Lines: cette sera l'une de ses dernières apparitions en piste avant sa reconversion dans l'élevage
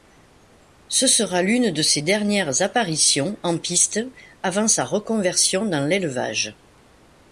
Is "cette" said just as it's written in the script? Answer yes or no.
no